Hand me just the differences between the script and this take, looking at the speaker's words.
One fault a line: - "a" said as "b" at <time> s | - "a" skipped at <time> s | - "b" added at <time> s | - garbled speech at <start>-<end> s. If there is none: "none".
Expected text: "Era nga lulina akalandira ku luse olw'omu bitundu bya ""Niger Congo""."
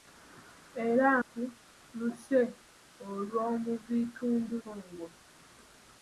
- "nga lulina akalandira" skipped at 1.1 s
- "bya Niger" skipped at 4.5 s